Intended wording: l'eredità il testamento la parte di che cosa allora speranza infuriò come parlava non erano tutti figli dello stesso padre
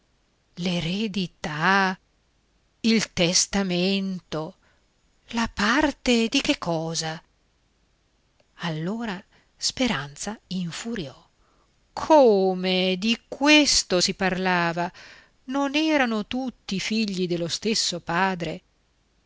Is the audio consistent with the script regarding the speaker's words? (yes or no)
no